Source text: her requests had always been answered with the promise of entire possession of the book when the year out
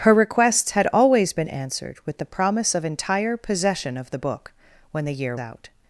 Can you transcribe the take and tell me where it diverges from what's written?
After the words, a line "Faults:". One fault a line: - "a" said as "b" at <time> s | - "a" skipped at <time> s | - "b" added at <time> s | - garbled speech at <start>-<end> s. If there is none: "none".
her requests had always been answered with the promise of entire possession of the book when the year out
Faults:
none